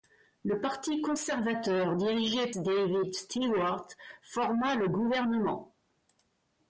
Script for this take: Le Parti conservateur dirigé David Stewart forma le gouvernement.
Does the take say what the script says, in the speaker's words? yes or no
yes